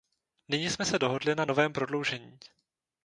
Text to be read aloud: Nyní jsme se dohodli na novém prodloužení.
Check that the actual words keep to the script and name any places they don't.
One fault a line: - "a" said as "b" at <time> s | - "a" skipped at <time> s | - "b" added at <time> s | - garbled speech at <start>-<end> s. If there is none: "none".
none